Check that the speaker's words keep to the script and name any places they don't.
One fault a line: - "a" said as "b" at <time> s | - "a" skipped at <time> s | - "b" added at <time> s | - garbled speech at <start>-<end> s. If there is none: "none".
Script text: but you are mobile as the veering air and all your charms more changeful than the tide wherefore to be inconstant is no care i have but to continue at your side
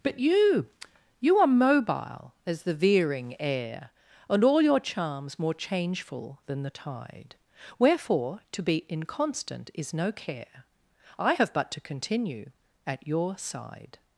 - "you" added at 1.2 s